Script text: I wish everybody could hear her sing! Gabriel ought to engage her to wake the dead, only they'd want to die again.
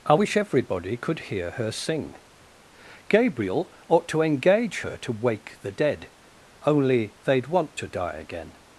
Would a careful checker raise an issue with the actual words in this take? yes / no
no